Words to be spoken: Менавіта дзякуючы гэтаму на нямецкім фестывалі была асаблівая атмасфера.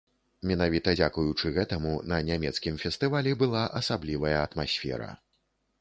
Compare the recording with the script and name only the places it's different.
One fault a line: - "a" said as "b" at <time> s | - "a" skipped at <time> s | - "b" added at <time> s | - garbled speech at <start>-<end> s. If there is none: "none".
none